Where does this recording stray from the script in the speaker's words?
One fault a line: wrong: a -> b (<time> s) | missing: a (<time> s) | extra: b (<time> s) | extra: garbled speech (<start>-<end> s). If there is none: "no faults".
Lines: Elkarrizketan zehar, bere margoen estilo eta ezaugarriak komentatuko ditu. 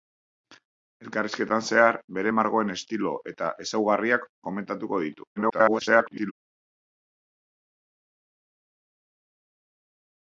extra: garbled speech (5.4-6.3 s)